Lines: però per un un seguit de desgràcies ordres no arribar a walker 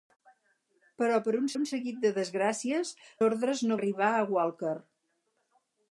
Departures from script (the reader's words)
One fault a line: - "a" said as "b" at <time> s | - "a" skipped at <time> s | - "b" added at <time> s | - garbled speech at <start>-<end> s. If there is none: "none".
none